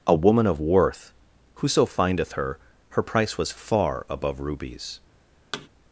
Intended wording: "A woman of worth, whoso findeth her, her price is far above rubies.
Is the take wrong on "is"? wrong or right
wrong